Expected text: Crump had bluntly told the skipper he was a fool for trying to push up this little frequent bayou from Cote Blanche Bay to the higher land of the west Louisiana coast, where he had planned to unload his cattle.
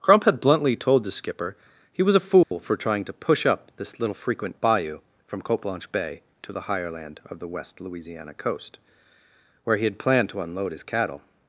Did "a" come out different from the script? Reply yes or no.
no